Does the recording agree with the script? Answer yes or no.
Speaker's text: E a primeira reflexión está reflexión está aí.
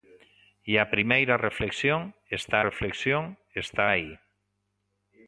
yes